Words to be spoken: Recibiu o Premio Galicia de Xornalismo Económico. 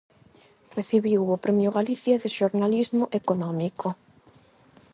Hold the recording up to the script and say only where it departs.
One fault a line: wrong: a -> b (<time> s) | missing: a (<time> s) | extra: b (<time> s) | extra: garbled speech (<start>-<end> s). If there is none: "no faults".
no faults